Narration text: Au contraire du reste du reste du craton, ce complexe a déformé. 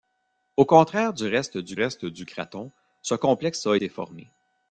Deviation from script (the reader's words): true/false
false